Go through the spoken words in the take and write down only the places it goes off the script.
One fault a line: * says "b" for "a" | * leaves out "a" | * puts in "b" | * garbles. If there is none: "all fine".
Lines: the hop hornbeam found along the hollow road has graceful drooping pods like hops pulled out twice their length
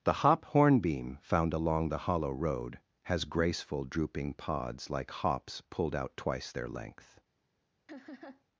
all fine